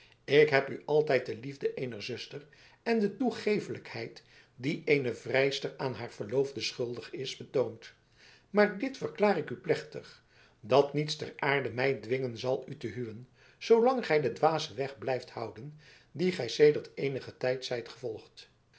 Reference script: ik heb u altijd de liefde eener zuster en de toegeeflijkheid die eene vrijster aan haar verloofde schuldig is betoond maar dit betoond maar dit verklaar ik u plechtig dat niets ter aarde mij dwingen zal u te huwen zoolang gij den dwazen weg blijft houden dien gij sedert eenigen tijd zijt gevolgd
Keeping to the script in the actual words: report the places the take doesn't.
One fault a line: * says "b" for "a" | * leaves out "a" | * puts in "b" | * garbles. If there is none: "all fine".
* leaves out "betoond maar dit"